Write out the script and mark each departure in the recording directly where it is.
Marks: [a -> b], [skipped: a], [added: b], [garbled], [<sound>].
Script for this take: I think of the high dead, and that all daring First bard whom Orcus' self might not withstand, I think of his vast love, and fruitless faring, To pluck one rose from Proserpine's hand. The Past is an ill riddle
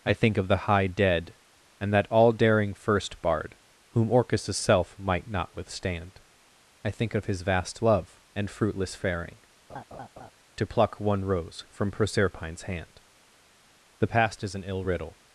I think of the high dead, and that all daring First bard whom Orcus' self might not withstand, I think of his vast love, and fruitless faring, [laugh] To pluck one rose from Proserpine's hand. The Past is an ill riddle